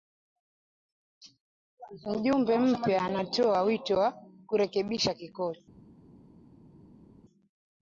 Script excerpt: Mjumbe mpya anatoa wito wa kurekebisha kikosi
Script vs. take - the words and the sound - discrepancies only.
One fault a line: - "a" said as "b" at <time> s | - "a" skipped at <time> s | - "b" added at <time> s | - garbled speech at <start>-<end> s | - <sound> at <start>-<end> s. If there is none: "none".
none